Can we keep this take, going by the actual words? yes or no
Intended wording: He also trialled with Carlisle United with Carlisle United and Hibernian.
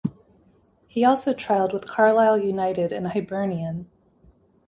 no